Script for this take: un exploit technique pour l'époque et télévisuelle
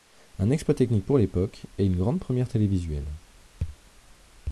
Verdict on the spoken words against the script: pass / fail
fail